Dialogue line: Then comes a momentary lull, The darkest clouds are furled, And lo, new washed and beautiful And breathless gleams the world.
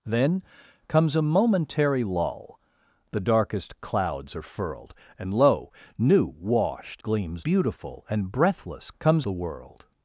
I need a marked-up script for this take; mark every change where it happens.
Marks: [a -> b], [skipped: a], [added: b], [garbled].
Then comes a momentary lull, The darkest clouds are furled, And lo, new washed [and -> gleams] beautiful And breathless [gleams -> comes] the world.